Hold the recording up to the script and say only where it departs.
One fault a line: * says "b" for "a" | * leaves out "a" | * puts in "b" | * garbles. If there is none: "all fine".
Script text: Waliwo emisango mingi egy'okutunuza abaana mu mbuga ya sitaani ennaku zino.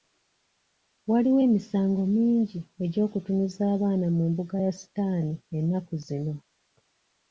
all fine